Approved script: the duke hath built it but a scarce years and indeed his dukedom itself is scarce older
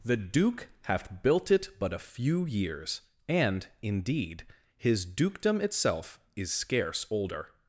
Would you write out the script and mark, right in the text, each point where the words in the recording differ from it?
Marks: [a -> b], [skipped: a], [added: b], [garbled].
the duke hath built it but a [scarce -> few] years and indeed his dukedom itself is scarce older